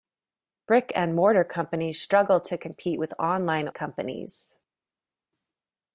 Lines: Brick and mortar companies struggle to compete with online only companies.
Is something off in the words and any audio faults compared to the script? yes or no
yes